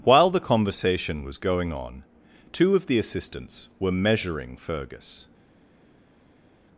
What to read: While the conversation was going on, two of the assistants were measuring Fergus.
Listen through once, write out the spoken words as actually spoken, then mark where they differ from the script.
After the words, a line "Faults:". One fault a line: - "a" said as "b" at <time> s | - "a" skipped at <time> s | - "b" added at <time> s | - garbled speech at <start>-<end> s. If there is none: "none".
While the conversation was going on, two of the assistants were measuring Fergus.
Faults:
none